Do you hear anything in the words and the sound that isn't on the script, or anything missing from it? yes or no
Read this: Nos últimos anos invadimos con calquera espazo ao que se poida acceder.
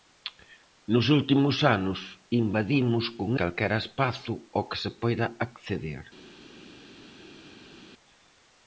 no